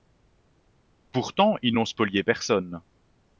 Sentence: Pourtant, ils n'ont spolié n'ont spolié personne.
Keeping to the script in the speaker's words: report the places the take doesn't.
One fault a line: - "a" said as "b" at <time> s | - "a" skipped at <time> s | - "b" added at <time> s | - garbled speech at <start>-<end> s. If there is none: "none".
- "n'ont spolié" skipped at 2.2 s